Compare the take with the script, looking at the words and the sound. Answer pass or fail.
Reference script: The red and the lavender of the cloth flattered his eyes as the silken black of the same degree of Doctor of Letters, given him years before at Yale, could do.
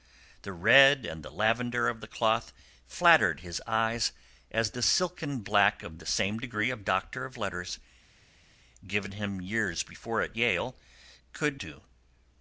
pass